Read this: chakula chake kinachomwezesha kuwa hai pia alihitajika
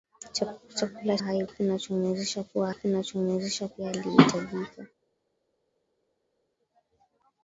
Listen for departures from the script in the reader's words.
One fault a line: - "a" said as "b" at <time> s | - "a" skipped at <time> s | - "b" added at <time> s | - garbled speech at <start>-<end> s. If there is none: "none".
- "chake" said as "hai" at 1.2 s
- "hai" said as "kinachomwezesha" at 2.7 s